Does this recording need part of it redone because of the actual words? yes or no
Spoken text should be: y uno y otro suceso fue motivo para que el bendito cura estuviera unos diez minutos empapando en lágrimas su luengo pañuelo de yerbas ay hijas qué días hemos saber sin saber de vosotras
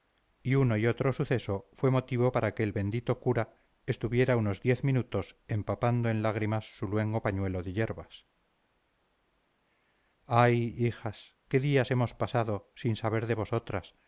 yes